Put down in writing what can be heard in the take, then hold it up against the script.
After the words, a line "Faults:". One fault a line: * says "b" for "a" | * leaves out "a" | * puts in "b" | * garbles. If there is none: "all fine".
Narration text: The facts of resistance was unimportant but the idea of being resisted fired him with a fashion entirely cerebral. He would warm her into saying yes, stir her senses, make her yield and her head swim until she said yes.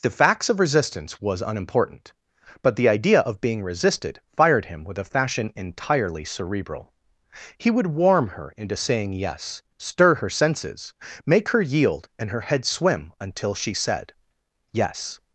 The facts of resistance was unimportant but the idea of being resisted fired him with a fashion entirely cerebral. He would warm her into saying yes, stir her senses, make her yield and her head swim until she said yes.
Faults:
all fine